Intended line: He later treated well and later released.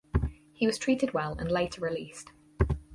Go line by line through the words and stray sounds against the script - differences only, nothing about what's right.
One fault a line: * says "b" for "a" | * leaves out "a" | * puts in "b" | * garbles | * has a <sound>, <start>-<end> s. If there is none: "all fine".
* says "was" for "later"